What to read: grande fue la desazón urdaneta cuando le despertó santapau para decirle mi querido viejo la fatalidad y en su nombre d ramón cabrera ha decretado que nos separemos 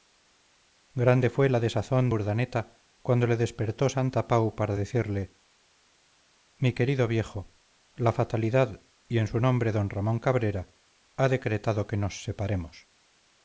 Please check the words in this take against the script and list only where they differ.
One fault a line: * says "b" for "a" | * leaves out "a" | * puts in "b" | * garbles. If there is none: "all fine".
all fine